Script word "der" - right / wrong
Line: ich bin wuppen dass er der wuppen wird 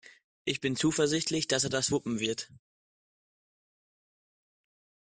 wrong